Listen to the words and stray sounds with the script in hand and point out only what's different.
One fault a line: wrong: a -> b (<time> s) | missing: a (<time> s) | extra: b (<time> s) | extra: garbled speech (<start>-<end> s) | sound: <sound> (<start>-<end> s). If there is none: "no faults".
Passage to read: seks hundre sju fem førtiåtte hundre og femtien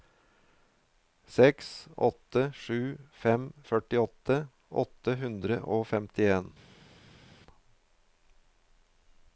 wrong: hundre -> åtte (2.1 s)
extra: åtte (4.8 s)